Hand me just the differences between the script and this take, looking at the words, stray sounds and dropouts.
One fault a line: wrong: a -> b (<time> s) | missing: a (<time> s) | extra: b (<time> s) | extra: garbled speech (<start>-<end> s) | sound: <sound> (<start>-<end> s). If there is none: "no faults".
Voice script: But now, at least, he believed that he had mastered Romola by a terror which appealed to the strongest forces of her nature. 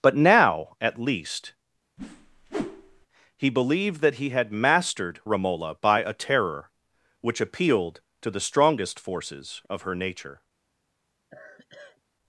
sound: whoosh (2.0-3.1 s)
sound: sigh (11.3-12.0 s)